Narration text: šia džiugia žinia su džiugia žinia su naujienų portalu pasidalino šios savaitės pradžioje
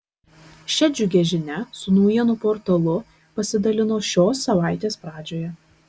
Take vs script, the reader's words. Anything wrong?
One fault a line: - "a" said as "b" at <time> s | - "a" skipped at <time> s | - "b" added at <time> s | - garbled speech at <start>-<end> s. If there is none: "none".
- "džiugia žinia su" skipped at 2.0 s